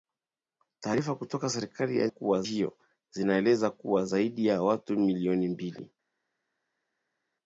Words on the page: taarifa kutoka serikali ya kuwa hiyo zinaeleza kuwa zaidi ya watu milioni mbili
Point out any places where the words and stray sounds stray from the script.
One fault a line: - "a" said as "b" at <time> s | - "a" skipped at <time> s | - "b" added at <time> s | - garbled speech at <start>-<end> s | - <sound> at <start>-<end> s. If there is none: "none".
none